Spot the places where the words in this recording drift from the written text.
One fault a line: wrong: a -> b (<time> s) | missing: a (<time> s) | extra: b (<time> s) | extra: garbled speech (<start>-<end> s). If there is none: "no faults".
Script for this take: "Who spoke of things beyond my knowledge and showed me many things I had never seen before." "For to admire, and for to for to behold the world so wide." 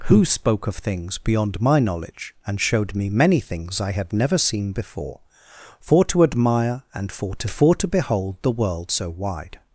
no faults